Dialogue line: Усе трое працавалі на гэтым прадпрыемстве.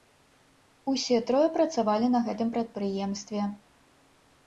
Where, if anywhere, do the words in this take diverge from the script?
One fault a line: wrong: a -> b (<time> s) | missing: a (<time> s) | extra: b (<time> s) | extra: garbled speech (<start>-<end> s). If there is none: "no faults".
no faults